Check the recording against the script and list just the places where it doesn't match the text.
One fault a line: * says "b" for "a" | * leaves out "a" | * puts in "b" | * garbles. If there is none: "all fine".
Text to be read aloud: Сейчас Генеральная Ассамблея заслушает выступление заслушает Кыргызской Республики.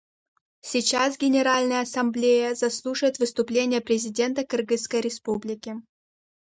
* says "президента" for "заслушает"